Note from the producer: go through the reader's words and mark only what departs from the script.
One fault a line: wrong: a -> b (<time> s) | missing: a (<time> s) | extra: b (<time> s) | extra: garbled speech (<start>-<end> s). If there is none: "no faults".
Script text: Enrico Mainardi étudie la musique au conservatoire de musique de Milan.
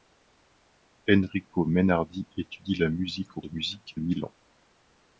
missing: conservatoire (3.4 s)
missing: de (4.0 s)